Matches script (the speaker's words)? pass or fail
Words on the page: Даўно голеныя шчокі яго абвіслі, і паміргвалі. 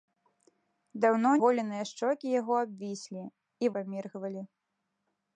pass